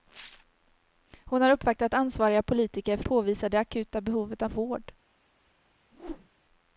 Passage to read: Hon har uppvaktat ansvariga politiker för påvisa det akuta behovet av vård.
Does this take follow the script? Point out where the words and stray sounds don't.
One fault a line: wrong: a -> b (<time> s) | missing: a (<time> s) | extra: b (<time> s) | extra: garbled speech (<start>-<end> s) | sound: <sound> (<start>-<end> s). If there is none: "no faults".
sound: whoosh (5.9-6.3 s)